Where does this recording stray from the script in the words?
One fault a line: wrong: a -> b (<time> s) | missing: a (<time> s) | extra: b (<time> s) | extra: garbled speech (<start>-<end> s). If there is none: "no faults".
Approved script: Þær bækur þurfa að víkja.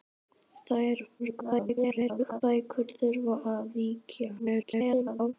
extra: garbled speech (1.2-2.4 s)
extra: garbled speech (4.4-5.3 s)